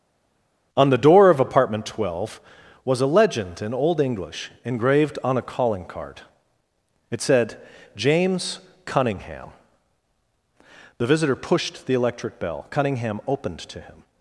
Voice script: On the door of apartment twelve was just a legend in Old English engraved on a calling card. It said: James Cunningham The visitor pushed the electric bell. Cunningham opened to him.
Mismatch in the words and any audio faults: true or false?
true